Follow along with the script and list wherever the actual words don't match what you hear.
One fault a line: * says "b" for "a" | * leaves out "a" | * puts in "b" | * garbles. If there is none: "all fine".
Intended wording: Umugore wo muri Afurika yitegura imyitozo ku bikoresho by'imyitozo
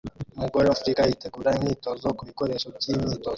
* leaves out "muri"